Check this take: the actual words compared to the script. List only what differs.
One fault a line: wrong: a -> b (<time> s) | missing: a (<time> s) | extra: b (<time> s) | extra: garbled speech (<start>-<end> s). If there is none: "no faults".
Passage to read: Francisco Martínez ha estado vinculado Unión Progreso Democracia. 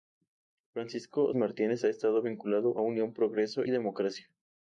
no faults